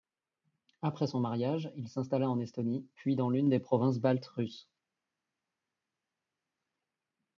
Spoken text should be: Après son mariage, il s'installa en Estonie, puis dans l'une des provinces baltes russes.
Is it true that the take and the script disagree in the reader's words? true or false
false